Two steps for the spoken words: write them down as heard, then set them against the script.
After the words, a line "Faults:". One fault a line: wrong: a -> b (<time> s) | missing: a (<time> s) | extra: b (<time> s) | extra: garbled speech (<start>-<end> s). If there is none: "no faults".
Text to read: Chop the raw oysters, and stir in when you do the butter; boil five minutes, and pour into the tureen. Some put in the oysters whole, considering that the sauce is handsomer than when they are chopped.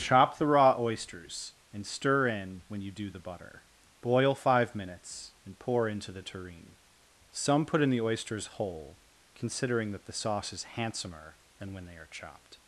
Chop the raw oysters, and stir in when you do the butter; boil five minutes, and pour into the tureen. Some put in the oysters whole, considering that the sauce is handsomer than when they are chopped.
Faults:
no faults